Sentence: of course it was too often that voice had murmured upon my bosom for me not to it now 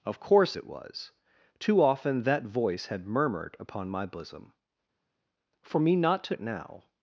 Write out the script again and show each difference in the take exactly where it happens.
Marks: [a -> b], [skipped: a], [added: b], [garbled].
of course it was too often that voice had murmured upon my bosom for me not to it now